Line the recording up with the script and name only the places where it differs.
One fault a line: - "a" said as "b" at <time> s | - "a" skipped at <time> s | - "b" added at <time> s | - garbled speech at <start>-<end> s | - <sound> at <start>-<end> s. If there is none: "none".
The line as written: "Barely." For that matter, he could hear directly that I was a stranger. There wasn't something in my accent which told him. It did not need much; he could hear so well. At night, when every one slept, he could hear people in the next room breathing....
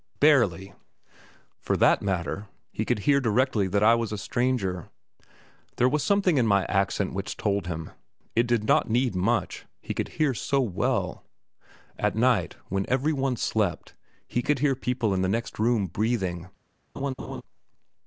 - "wasn't" said as "was" at 5.9 s
- laugh at 17.0-17.4 s